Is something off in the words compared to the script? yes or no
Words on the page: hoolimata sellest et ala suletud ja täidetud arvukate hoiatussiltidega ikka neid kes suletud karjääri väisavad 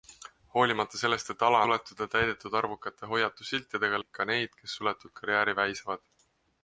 no